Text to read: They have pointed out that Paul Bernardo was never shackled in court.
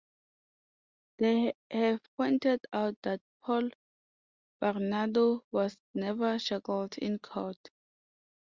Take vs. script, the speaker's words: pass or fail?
pass